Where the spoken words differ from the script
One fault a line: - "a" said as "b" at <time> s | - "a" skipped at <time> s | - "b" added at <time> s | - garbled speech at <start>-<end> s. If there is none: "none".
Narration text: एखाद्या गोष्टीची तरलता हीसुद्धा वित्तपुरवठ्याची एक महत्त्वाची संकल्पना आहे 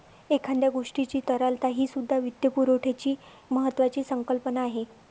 - "एक" skipped at 3.1 s